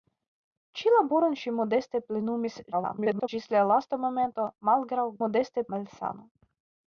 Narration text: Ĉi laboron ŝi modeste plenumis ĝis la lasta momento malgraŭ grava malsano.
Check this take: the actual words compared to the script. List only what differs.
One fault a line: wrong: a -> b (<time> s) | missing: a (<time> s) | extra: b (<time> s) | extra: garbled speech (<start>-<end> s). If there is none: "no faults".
extra: garbled speech (2.7-3.3 s)
wrong: grava -> modeste (5.2 s)